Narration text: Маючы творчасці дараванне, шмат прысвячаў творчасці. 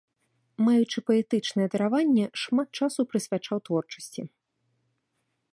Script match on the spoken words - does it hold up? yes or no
no